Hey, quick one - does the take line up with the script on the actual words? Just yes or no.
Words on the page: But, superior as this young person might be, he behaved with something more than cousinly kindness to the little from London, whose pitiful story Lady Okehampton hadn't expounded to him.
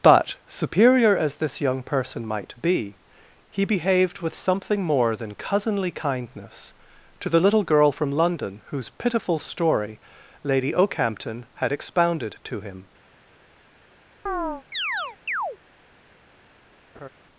no